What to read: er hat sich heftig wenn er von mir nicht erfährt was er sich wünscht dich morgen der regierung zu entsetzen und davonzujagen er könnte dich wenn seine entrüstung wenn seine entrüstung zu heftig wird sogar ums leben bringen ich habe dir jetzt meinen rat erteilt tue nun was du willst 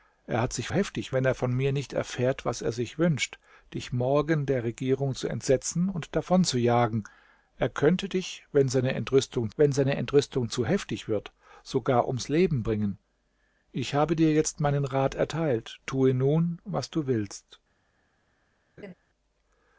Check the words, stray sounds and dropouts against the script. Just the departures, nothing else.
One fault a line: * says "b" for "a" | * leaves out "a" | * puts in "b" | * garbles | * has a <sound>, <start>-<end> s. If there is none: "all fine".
* has a laugh, 18.8-18.9 s